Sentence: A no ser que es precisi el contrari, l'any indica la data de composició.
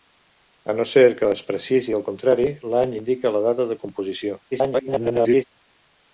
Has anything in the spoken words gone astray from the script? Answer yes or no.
yes